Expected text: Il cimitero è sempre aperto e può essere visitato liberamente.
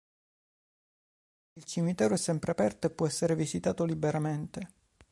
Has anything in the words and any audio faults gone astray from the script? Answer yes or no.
no